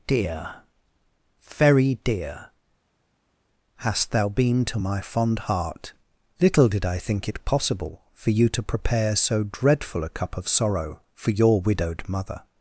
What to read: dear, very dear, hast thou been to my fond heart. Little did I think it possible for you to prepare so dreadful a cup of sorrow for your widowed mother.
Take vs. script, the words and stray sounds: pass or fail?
pass